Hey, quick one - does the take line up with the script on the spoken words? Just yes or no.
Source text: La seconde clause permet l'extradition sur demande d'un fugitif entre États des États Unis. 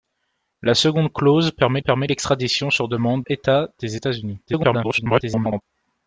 no